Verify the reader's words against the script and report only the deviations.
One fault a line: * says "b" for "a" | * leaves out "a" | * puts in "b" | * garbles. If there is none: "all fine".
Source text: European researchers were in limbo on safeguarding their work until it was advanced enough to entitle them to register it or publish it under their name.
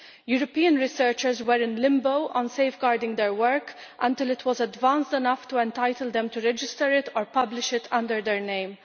all fine